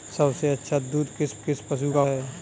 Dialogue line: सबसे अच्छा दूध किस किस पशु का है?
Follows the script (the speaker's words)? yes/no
yes